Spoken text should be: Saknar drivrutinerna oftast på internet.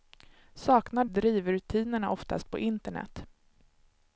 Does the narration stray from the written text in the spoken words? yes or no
no